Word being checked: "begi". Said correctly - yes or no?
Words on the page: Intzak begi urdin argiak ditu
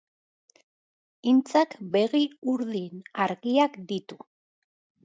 yes